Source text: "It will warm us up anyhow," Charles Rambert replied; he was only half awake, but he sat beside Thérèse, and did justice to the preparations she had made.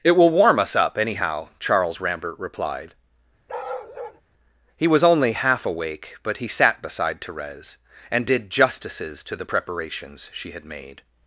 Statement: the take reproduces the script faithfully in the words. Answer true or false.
false